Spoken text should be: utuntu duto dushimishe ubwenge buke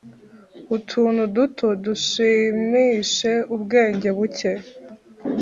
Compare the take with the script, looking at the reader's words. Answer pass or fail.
pass